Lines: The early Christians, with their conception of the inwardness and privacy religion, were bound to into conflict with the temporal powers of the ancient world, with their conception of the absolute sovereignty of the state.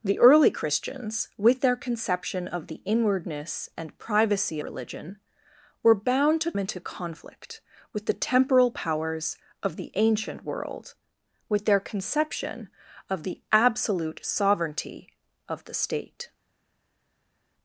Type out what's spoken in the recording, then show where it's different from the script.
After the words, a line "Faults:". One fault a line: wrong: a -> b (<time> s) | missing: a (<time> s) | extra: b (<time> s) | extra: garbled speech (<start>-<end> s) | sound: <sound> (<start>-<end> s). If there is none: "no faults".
The early Christians, with their conception of the inwardness and privacy religion, were bound to into conflict with the temporal powers of the ancient world, with their conception of the absolute sovereignty of the state.
Faults:
no faults